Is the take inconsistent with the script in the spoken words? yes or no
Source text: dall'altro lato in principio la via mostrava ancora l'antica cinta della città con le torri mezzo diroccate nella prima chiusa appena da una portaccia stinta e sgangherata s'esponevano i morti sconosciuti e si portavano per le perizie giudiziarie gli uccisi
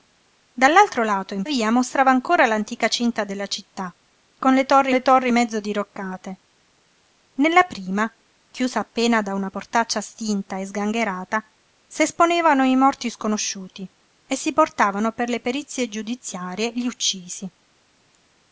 yes